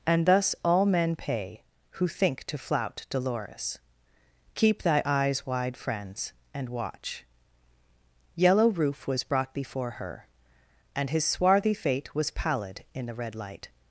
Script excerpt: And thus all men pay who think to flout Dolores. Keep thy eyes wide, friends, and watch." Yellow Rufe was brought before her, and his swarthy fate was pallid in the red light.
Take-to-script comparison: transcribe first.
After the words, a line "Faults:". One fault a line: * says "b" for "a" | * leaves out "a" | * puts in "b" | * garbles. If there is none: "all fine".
And thus all men pay who think to flout Dolores. Keep thy eyes wide, friends, and watch." Yellow Rufe was brought before her, and his swarthy fate was pallid in the red light.
Faults:
all fine